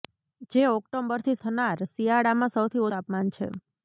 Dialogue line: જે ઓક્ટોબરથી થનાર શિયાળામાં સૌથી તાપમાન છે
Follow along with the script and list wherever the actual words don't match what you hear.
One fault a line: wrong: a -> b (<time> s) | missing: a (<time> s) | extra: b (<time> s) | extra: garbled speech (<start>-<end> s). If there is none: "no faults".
no faults